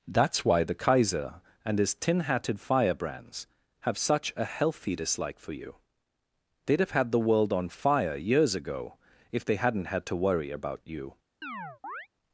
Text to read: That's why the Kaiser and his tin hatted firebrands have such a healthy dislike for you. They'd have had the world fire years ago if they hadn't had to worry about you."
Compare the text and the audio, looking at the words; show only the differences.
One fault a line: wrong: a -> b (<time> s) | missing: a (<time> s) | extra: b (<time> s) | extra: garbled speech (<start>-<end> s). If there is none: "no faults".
extra: on (7.5 s)